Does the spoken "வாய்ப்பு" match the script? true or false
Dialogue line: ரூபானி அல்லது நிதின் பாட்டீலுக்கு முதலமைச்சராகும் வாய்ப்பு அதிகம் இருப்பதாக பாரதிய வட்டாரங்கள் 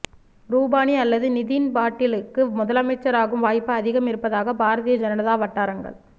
true